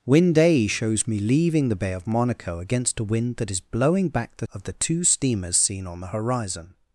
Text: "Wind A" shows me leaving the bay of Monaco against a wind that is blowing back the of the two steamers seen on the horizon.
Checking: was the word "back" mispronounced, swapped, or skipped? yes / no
no